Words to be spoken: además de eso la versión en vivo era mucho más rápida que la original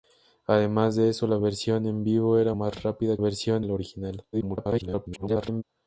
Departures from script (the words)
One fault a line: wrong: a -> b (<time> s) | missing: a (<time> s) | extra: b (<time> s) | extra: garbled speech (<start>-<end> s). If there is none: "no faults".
missing: mucho (2.5 s)
wrong: que -> versión (3.1 s)
extra: garbled speech (4.3-5.6 s)